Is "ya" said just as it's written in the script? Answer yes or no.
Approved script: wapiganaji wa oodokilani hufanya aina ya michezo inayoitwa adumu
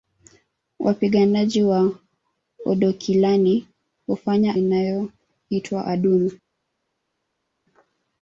no